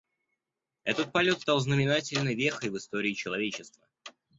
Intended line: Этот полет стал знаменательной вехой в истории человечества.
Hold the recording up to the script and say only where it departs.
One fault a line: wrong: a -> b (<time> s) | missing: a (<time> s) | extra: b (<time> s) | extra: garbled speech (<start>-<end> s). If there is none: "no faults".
no faults